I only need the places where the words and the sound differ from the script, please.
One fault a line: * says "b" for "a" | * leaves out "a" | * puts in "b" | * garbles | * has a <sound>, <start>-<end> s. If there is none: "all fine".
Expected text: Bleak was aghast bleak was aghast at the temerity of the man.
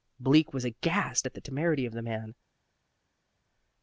* leaves out "bleak was aghast"